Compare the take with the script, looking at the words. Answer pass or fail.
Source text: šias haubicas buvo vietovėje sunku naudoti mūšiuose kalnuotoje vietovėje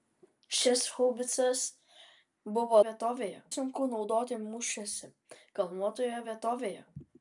pass